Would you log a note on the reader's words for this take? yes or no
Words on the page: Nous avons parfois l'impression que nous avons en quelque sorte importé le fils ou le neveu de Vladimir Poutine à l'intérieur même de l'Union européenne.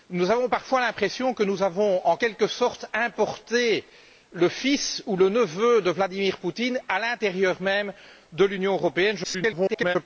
yes